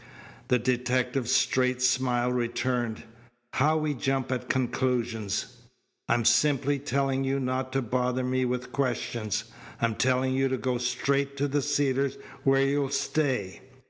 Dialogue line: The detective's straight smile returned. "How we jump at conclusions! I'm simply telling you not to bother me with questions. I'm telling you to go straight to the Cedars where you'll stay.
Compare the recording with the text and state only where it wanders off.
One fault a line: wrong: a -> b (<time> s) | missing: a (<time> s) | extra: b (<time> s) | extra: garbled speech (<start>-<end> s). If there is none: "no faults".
no faults